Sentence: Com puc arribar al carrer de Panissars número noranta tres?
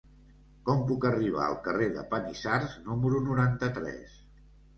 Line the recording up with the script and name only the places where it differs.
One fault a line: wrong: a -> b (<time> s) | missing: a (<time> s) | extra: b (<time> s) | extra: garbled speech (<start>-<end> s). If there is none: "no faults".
no faults